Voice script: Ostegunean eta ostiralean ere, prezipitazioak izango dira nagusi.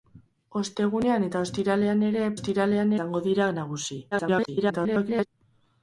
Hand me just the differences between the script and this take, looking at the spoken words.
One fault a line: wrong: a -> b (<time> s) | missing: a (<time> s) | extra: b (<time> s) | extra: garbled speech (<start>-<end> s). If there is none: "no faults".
wrong: prezipitazioak -> ostiralean (2.4 s)
extra: garbled speech (4.1-5.3 s)